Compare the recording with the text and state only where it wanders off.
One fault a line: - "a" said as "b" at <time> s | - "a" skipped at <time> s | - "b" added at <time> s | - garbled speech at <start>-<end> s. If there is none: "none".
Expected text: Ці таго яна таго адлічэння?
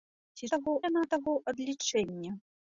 none